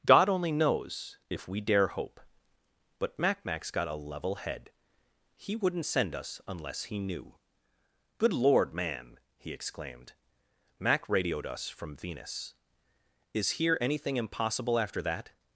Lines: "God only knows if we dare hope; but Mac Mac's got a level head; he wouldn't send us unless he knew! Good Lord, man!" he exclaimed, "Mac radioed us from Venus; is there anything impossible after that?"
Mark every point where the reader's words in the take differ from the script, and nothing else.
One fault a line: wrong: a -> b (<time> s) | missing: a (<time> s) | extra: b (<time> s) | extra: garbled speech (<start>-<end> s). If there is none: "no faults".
wrong: there -> here (13.5 s)